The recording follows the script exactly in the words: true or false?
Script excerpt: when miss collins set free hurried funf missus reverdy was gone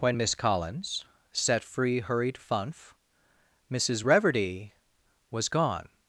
true